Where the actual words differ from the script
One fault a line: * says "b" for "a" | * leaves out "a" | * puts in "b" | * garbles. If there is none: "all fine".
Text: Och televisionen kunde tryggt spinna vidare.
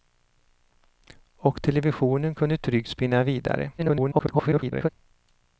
* garbles